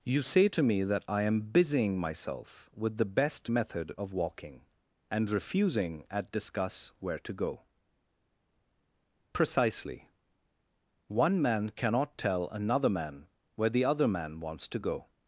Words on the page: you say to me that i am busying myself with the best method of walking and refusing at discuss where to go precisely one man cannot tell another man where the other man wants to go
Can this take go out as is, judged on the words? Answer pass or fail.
pass